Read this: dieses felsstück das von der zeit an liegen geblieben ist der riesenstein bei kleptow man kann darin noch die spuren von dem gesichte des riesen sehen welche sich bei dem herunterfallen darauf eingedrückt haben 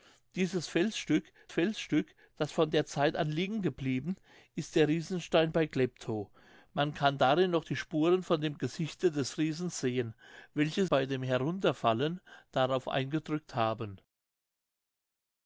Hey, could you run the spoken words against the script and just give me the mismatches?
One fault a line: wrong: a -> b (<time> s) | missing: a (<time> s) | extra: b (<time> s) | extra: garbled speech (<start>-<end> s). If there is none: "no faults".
extra: felsstück (1.5 s)
missing: sich (10.9 s)